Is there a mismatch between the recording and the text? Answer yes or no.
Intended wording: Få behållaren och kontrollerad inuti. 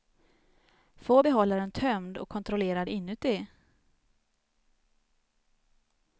yes